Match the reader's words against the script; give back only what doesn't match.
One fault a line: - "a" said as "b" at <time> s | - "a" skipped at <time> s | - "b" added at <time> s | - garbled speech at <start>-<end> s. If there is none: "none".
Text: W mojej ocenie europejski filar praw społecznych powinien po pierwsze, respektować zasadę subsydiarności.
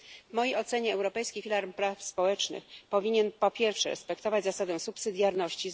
none